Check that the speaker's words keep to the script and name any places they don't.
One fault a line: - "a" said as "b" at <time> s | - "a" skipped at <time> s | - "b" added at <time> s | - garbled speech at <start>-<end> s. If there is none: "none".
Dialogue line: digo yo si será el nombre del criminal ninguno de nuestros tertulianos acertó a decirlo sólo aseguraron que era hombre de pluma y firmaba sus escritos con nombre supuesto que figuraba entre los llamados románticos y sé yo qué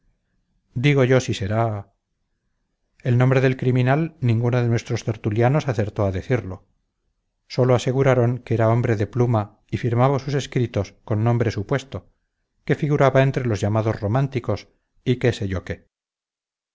- "qué" added at 15.2 s